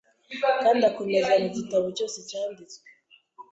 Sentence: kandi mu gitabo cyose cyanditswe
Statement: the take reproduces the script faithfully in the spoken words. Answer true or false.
false